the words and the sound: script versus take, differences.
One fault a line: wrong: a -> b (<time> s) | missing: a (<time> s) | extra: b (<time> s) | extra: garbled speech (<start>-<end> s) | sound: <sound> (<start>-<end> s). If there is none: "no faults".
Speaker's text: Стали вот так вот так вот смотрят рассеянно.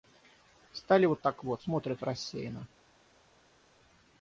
missing: так вот (1.6 s)